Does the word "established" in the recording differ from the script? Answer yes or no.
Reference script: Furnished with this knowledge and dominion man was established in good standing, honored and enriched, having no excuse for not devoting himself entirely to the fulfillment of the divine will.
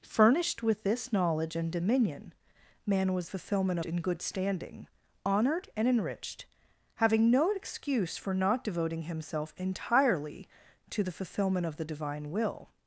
yes